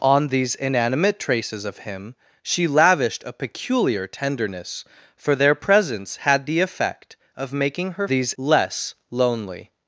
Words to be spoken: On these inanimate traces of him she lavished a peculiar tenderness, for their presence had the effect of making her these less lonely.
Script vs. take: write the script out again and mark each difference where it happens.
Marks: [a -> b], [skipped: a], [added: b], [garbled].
On these inanimate traces of him she lavished a peculiar tenderness, for their presence had the effect of making her these less lonely.